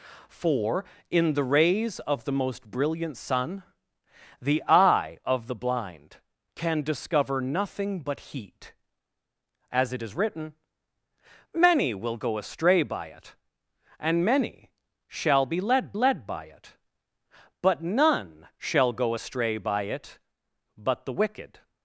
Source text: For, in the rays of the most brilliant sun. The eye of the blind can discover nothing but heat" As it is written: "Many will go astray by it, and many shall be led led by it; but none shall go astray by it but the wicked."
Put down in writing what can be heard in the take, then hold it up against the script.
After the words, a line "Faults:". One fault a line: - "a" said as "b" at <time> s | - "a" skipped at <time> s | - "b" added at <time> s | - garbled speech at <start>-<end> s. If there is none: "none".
For, in the rays of the most brilliant sun. The eye of the blind can discover nothing but heat" As it is written: "Many will go astray by it, and many shall be led led by it; but none shall go astray by it but the wicked."
Faults:
none